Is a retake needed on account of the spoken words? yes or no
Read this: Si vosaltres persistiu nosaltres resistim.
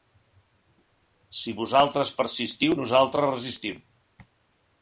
no